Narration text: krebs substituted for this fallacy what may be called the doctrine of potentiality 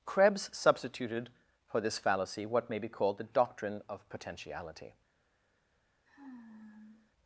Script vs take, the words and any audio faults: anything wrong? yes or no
yes